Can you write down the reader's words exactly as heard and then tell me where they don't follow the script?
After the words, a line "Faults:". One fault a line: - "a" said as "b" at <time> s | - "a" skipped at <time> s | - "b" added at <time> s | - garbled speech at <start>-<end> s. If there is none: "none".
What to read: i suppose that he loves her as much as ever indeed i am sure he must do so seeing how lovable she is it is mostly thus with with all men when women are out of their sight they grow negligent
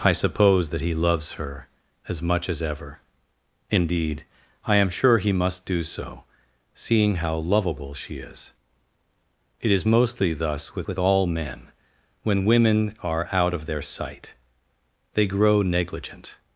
i suppose that he loves her as much as ever indeed i am sure he must do so seeing how lovable she is it is mostly thus with with all men when women are out of their sight they grow negligent
Faults:
none